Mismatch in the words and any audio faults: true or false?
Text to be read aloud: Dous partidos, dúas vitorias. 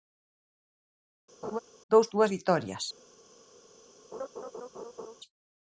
true